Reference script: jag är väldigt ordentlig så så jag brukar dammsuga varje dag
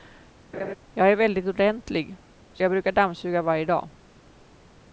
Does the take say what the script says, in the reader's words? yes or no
no